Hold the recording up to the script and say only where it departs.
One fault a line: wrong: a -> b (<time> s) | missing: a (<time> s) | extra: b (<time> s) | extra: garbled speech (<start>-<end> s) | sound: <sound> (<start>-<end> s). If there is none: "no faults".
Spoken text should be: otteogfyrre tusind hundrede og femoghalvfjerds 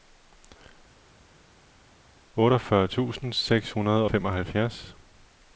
extra: seks (3.3 s)